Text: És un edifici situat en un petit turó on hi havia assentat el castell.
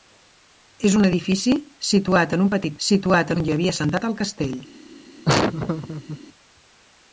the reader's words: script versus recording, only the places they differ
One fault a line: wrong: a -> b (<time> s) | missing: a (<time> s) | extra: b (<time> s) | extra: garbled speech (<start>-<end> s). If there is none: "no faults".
wrong: turó -> situat (2.9 s)